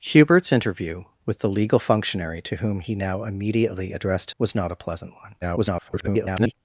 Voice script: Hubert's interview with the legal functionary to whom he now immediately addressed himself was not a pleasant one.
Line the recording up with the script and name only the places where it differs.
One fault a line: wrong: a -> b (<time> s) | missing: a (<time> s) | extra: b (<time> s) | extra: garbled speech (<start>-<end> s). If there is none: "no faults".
missing: himself (4.3 s)
extra: garbled speech (5.4-6.5 s)